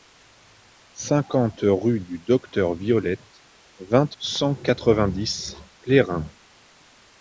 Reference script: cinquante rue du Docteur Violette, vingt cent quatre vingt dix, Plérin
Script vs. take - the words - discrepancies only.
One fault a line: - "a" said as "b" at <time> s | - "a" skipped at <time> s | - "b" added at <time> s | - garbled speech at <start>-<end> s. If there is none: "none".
none